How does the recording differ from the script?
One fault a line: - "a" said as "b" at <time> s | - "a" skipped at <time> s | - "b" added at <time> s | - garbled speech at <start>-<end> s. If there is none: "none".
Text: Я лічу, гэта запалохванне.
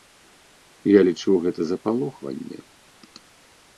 none